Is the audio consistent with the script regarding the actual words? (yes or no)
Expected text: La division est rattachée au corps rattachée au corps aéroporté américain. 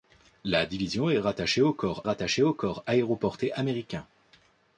yes